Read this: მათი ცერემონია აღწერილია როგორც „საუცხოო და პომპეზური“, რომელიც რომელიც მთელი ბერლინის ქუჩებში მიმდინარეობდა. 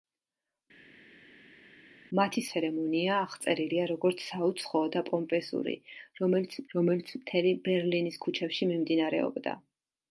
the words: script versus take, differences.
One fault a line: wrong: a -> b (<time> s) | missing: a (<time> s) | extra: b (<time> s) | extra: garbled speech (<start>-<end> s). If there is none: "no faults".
no faults